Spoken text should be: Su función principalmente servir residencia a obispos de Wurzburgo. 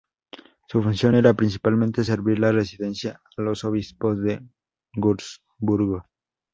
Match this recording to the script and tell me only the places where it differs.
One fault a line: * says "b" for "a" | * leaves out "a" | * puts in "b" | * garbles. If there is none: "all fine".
* puts in "era"
* puts in "de"
* puts in "los"